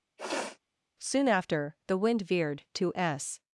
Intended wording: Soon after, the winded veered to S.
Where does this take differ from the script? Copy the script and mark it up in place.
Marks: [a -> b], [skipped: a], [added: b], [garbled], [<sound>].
[sniff] Soon after, the [winded -> wind] veered to S.